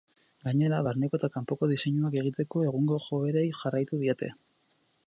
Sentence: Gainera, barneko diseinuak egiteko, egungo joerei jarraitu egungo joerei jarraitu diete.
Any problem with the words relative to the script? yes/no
yes